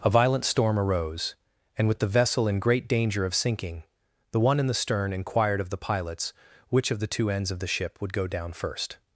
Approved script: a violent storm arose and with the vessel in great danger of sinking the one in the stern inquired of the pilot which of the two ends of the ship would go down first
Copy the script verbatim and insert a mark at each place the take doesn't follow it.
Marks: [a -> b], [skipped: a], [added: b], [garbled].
a violent storm arose and with the vessel in great danger of sinking the one in the stern inquired of the [pilot -> pilots] which of the two ends of the ship would go down first